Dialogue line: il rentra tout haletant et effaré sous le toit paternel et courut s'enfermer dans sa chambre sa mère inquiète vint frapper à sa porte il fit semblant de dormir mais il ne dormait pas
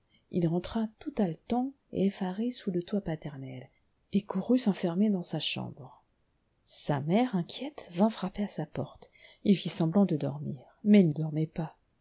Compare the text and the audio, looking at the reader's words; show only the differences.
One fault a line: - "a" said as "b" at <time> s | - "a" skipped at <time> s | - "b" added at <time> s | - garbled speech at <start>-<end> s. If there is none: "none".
- "ne" skipped at 11.1 s